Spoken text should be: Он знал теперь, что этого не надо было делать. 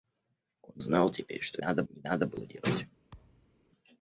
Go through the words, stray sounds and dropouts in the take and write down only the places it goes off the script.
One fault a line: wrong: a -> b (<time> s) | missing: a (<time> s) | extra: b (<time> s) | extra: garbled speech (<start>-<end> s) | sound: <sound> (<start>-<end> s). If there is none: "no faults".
wrong: этого -> надо (1.6 s)
sound: thud (3.1-3.6 s)